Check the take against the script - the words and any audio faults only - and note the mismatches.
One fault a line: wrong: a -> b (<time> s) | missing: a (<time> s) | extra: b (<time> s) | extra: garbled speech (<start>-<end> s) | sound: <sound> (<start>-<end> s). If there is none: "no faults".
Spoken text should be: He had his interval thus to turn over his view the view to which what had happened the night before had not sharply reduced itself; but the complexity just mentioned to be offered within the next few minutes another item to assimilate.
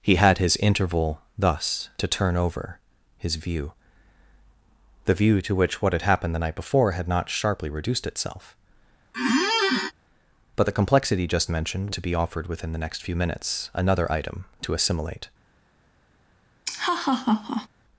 sound: squeak (9.1-9.9 s)
sound: laugh (16.6-17.7 s)